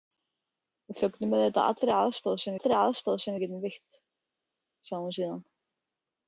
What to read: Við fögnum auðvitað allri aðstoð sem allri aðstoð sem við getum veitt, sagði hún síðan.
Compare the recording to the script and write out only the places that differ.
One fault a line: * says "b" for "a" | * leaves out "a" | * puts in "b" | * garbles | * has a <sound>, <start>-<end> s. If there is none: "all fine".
all fine